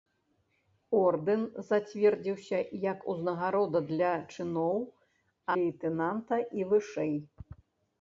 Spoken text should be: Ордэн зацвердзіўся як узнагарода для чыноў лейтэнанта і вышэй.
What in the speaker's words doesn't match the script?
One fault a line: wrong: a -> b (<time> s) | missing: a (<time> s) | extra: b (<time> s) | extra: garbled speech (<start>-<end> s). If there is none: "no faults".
no faults